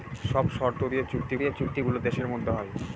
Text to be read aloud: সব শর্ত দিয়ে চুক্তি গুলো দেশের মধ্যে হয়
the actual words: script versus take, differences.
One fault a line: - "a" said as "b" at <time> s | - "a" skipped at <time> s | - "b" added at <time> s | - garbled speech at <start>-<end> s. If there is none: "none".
- "দিয়ে চুক্তি" added at 1.4 s